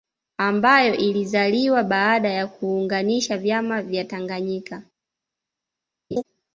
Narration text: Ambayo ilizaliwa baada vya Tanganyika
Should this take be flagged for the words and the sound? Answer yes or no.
yes